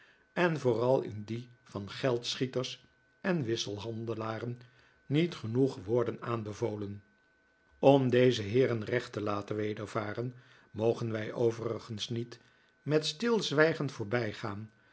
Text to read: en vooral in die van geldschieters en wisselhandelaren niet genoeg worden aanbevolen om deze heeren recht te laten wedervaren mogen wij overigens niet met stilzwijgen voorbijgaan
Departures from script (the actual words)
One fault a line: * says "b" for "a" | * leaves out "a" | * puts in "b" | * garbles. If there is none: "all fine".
all fine